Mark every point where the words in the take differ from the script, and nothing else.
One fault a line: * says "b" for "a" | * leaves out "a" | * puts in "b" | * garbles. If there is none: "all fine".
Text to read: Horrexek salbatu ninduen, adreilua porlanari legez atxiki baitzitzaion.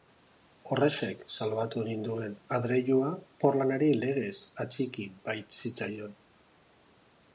all fine